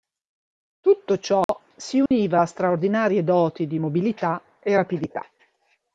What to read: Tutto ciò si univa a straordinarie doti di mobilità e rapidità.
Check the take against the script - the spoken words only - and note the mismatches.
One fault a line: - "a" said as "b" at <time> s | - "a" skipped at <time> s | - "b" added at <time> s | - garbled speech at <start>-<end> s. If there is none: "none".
none